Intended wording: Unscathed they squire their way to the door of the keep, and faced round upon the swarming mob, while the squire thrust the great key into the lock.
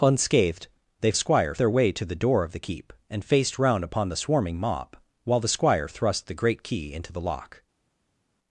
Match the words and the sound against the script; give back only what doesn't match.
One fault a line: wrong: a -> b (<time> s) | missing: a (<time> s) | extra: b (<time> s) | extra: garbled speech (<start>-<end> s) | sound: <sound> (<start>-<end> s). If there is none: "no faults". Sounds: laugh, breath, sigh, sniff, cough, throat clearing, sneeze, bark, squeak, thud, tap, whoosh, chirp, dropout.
no faults